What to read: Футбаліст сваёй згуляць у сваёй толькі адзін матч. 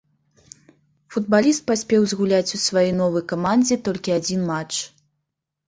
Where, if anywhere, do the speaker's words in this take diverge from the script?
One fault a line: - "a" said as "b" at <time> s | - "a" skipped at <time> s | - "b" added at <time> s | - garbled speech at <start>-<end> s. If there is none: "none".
- "сваёй" said as "паспеў" at 1.7 s
- "новай камандзе" added at 3.0 s